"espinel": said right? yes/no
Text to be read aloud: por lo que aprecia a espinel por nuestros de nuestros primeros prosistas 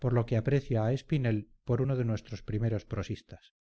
yes